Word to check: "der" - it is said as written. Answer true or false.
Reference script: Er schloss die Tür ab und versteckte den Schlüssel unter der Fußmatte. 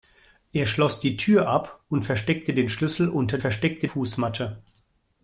false